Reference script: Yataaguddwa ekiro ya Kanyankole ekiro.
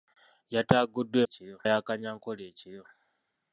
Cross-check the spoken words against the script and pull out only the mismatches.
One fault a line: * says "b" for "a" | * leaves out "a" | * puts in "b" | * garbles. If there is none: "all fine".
all fine